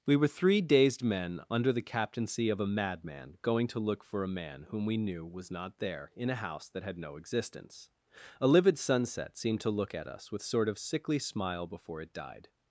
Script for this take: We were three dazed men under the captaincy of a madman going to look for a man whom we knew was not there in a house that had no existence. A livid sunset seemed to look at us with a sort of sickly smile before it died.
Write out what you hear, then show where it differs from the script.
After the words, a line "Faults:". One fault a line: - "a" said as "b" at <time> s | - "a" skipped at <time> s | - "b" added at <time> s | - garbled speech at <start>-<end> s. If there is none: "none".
We were three dazed men under the captaincy of a madman going to look for a man whom we knew was not there in a house that had no existence. A livid sunset seemed to look at us with sort of sickly smile before it died.
Faults:
- "a" skipped at 10.4 s